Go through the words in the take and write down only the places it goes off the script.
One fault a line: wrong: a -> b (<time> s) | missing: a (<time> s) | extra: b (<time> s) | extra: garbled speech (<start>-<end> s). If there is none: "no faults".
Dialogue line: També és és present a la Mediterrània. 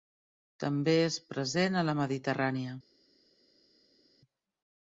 missing: és (1.2 s)